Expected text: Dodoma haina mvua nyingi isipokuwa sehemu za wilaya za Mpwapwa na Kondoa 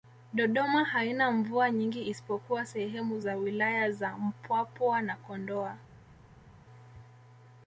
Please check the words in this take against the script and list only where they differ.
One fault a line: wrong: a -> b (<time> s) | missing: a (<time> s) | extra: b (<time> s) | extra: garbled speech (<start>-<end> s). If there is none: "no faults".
no faults